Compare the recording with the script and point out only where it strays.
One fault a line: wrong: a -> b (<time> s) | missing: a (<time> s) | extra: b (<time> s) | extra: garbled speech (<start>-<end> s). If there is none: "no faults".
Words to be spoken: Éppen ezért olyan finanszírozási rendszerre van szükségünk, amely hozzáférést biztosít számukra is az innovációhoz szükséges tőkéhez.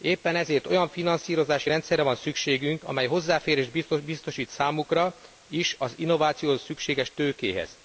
no faults